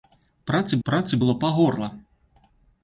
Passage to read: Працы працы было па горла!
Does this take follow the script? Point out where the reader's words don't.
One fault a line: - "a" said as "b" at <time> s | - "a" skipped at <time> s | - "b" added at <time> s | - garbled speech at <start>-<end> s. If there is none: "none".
none